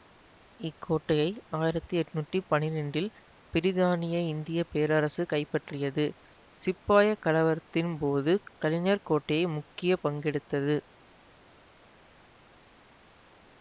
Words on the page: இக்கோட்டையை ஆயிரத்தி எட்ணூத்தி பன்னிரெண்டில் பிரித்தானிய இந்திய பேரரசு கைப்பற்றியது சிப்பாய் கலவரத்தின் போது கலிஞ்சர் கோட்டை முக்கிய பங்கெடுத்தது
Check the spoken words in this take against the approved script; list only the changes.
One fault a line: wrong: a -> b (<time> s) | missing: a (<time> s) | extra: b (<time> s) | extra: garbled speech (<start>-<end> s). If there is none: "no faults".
no faults